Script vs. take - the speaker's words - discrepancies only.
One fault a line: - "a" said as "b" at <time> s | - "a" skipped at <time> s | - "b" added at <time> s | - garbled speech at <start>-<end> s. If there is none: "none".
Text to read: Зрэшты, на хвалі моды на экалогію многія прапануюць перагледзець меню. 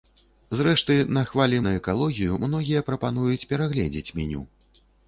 - "моды" skipped at 1.6 s